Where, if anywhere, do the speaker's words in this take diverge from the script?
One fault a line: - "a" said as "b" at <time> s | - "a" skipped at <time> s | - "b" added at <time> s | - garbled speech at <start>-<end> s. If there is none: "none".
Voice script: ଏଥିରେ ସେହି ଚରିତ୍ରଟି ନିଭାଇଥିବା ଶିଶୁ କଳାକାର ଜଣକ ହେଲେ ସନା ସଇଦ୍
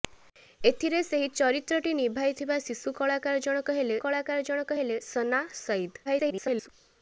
- "କଳାକାର ଜଣକ ହେଲେ" added at 4.0 s
- garbled speech at 6.1-6.7 s